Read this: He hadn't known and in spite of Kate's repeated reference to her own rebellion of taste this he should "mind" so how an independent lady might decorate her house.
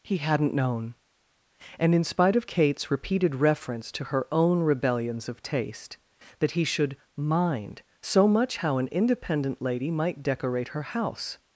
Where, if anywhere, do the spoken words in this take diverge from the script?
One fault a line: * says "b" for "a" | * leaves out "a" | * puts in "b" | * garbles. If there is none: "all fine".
* says "rebellions" for "rebellion"
* says "that" for "this"
* puts in "much"